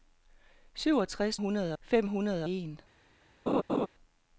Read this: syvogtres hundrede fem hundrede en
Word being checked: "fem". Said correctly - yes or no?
yes